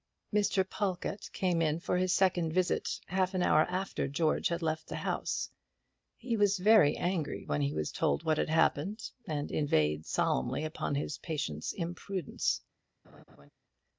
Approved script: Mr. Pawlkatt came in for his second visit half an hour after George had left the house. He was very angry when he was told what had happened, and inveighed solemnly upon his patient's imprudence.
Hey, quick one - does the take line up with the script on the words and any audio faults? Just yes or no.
no